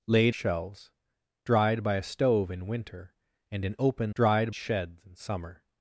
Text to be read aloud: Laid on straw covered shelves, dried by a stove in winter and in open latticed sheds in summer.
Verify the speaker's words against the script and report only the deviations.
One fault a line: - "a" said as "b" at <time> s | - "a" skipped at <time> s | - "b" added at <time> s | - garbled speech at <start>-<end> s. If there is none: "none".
- "on straw covered" skipped at 0.3 s
- "latticed" said as "dried" at 4.1 s